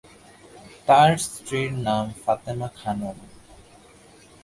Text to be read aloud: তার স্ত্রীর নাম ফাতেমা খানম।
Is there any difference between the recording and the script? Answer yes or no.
no